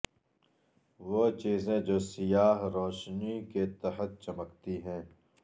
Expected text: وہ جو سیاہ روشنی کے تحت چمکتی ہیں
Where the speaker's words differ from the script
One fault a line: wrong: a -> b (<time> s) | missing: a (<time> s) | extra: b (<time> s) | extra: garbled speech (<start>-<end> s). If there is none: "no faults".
extra: چیزیں (1.3 s)